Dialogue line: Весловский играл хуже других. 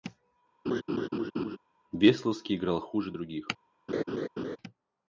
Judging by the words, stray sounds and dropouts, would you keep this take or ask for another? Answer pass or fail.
fail